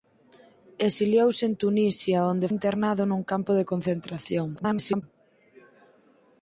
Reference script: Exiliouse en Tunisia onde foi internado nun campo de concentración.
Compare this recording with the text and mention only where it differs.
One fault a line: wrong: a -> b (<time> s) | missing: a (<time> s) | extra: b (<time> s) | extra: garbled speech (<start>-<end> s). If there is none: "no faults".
missing: foi (2.5 s)
extra: garbled speech (4.6-5.0 s)